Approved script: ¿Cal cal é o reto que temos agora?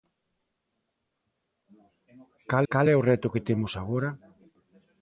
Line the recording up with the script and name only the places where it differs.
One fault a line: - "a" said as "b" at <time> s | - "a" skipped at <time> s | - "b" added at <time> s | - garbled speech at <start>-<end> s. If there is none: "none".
none